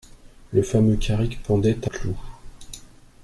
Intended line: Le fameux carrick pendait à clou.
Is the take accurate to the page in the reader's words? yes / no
yes